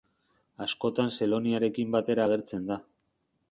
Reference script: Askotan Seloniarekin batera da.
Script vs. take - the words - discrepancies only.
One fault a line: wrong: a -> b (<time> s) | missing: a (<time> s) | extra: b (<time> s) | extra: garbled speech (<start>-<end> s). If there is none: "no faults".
extra: agertzen (2.3 s)